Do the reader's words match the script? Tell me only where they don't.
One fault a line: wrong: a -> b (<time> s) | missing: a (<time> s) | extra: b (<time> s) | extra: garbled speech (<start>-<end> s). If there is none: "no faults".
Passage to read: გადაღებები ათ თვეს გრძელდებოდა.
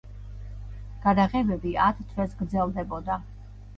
no faults